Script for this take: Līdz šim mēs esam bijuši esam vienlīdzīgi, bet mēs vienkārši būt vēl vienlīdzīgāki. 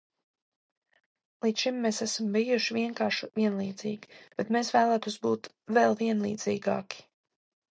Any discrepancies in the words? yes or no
yes